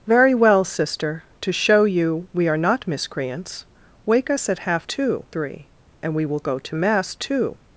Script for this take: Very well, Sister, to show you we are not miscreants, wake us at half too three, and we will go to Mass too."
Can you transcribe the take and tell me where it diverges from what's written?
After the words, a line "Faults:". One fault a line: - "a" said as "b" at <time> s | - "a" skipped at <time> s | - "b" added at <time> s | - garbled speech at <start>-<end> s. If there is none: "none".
Very well, Sister, to show you we are not miscreants, wake us at half too three, and we will go to Mass too."
Faults:
none